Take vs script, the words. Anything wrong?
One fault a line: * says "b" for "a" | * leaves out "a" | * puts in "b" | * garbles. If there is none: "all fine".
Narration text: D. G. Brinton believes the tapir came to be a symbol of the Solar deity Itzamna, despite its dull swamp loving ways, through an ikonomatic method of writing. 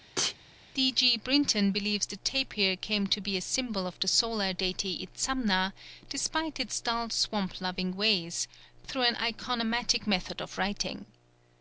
all fine